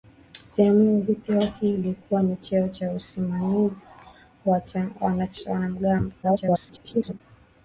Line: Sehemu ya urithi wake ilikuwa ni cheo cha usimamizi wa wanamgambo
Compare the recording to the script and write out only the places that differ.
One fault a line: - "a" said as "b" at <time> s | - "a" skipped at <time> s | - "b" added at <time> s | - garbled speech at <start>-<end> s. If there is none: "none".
- garbled speech at 6.2-7.2 s